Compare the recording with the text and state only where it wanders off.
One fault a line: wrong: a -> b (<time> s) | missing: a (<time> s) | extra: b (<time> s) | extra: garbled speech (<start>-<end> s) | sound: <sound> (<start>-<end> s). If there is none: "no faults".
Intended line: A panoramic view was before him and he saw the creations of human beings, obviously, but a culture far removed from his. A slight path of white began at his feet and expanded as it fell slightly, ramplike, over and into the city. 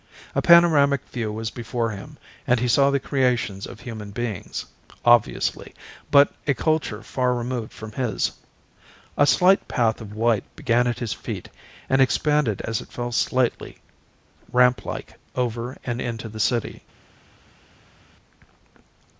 no faults